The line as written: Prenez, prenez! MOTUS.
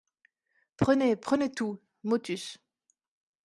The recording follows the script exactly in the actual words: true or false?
false